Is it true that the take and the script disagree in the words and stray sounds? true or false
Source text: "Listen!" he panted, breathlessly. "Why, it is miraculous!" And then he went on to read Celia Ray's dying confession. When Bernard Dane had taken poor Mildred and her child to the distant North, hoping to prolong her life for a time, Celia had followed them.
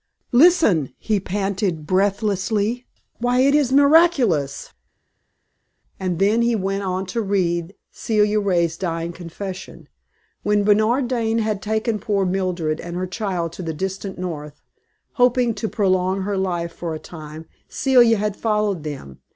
false